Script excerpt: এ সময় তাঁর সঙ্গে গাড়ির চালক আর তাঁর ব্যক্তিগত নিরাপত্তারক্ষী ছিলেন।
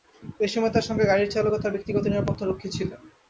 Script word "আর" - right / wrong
wrong